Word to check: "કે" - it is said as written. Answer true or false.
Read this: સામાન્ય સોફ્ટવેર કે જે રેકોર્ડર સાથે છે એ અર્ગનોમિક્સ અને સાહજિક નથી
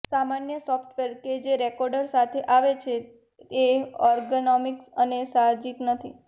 true